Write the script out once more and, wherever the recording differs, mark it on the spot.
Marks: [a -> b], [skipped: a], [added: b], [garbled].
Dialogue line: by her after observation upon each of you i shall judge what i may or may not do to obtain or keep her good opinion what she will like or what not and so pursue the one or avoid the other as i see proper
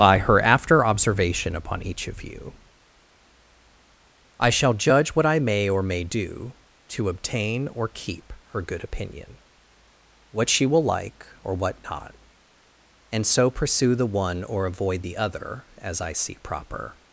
by her after observation upon each of you i shall judge what i may or may [skipped: not] do to obtain or keep her good opinion what she will like or what not and so pursue the one or avoid the other as i see proper